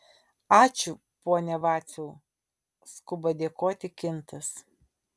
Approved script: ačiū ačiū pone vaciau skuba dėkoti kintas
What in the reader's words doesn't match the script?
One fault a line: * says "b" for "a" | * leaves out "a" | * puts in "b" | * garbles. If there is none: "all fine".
* leaves out "ačiū"